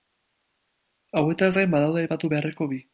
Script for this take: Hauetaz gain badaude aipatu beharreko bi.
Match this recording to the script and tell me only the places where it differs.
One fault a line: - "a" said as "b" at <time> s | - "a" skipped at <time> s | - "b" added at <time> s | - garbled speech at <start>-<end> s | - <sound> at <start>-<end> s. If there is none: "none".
none